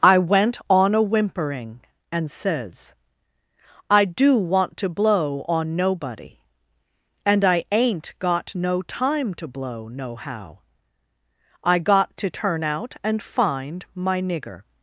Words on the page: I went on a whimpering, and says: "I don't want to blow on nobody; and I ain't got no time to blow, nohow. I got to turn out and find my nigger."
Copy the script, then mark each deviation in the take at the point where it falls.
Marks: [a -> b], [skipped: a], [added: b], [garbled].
I went on a whimpering, and says: "I [don't -> do] want to blow on nobody; and I ain't got no time to blow, nohow. I got to turn out and find my nigger."